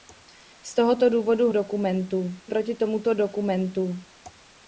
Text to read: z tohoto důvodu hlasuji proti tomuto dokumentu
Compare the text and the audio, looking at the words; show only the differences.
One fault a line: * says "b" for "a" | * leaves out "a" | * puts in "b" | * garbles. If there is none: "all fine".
* says "dokumentu" for "hlasuji"